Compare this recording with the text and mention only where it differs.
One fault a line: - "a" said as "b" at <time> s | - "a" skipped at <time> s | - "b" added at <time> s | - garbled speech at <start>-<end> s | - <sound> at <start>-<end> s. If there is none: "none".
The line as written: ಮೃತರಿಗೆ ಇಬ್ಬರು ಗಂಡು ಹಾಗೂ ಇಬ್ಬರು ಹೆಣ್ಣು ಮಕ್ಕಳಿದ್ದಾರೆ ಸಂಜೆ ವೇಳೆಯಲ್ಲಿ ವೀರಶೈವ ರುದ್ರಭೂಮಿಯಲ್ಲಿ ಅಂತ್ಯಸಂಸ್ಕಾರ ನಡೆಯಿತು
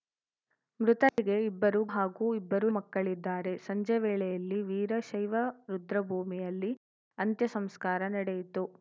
- dropout at 1.1-1.2 s
- "ಗಂಡು" skipped at 1.8 s
- "ಹೆಣ್ಣು" skipped at 2.7 s